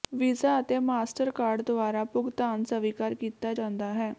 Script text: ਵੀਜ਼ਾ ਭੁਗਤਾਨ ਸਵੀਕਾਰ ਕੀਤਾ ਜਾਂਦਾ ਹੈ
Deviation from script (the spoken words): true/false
true